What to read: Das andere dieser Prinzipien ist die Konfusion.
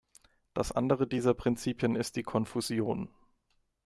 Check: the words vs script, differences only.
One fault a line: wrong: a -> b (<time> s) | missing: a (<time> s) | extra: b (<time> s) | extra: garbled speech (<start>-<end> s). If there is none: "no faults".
no faults